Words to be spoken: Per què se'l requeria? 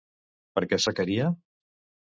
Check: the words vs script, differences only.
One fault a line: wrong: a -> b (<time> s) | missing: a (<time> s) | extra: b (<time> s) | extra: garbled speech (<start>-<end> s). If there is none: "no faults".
missing: se'l (0.8 s)